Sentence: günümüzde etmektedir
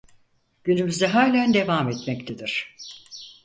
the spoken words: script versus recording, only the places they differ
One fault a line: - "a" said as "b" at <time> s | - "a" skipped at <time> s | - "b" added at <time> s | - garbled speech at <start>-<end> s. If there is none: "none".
- "halen devam" added at 1.1 s